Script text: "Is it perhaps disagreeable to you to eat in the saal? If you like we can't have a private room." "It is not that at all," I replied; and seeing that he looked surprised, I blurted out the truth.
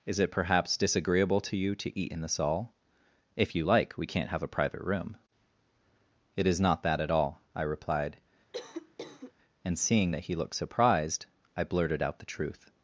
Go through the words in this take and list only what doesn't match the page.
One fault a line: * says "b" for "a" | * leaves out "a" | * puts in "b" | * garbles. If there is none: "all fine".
all fine